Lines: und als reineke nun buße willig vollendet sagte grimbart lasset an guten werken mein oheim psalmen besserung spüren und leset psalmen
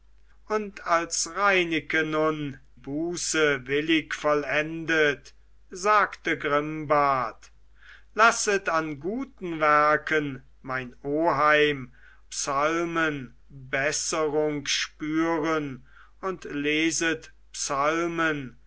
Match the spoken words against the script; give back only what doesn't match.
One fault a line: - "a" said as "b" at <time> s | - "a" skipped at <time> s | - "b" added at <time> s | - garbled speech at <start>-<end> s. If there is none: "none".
none